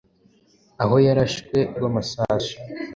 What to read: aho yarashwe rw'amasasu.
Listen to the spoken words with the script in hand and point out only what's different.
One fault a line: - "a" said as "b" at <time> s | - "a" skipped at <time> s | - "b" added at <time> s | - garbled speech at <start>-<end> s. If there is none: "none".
none